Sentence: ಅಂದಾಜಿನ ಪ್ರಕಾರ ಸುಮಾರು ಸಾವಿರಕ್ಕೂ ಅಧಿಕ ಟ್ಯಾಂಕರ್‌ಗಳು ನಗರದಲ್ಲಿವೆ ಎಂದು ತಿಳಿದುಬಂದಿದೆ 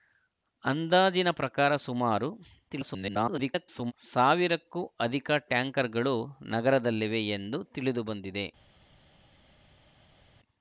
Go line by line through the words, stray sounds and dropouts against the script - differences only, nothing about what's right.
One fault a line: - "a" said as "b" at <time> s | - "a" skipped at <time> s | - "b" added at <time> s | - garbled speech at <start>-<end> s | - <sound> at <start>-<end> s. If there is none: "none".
- garbled speech at 2.7-3.9 s